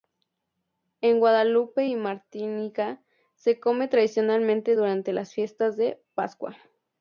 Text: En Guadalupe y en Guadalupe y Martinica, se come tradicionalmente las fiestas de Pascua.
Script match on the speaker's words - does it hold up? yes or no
no